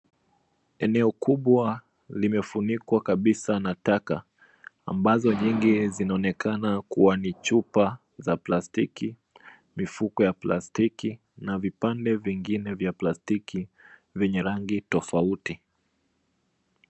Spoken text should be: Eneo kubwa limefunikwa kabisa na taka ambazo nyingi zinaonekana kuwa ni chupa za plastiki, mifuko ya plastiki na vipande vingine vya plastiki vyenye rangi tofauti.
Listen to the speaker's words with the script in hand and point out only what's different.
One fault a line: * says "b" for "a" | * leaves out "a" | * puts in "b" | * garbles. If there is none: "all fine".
all fine